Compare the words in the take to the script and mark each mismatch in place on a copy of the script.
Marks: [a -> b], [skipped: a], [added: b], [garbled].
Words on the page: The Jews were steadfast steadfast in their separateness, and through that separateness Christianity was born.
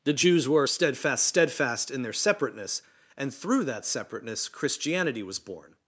The Jews were steadfast steadfast in their separateness, and through that separateness Christianity was born.